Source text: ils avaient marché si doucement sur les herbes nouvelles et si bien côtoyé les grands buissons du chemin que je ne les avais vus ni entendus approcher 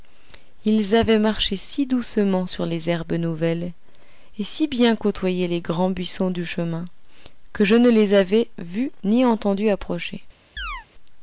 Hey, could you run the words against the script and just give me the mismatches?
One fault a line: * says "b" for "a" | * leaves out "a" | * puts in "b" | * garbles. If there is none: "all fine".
all fine